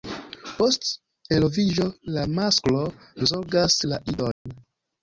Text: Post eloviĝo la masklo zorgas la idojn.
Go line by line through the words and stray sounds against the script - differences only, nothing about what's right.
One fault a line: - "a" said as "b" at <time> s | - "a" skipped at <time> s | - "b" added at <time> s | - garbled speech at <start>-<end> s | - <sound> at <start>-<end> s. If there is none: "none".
- dropout at 4.3-4.5 s